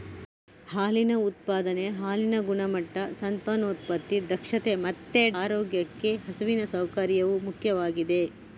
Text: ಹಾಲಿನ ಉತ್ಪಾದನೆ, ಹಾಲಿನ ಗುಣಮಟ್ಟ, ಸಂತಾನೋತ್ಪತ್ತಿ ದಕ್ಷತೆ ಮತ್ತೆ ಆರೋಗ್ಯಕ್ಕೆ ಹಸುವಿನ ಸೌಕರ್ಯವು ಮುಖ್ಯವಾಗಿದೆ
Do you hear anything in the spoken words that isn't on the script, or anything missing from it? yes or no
no